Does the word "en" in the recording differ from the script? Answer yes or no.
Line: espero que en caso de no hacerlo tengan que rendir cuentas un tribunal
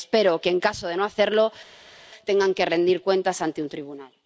no